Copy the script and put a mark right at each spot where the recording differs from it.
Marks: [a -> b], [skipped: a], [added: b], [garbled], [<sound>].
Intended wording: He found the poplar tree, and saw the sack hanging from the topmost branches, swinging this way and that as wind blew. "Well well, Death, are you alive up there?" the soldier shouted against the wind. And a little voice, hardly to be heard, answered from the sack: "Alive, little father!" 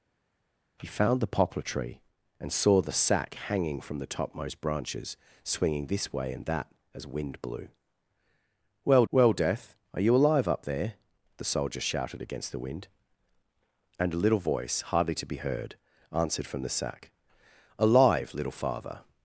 He found the poplar tree, and saw the sack hanging from the topmost branches, swinging this way and that as wind blew. "Well well, Death, are you alive up there?" the soldier shouted against the wind. And a little voice, hardly to be heard, answered from the sack: "Alive, little father!"